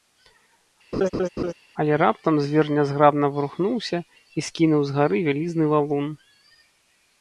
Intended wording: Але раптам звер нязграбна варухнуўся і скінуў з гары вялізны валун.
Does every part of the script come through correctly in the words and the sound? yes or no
no